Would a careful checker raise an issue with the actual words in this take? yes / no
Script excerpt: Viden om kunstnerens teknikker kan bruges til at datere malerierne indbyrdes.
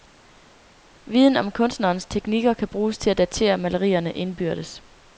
no